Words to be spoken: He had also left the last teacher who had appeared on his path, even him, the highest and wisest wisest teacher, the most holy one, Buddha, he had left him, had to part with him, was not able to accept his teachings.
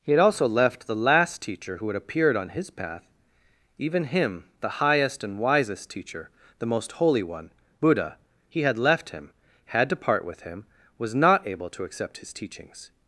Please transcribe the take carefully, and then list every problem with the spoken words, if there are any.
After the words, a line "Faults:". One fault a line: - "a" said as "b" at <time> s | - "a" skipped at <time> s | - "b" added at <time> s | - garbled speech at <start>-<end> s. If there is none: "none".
He had also left the last teacher who had appeared on his path, even him, the highest and wisest teacher, the most holy one, Buddha, he had left him, had to part with him, was not able to accept his teachings.
Faults:
- "wisest" skipped at 5.9 s